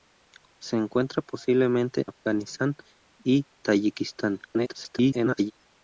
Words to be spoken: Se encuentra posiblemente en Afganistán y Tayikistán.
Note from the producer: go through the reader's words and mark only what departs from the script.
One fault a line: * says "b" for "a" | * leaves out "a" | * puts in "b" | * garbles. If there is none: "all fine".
* leaves out "en"
* garbles